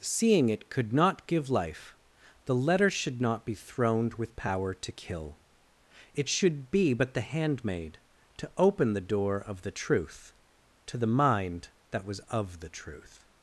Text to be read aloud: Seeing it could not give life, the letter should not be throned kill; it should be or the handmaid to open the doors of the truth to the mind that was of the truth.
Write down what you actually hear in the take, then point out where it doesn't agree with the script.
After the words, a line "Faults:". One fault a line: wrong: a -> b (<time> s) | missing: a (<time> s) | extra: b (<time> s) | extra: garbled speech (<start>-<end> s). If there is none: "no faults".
Seeing it could not give life, the letter should not be throned with power to kill; it should be but the handmaid to open the door of the truth to the mind that was of the truth.
Faults:
extra: with power to (4.2 s)
wrong: or -> but (6.9 s)
wrong: doors -> door (9.0 s)